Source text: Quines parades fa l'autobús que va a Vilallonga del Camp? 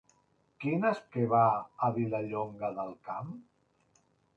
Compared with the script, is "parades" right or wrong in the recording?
wrong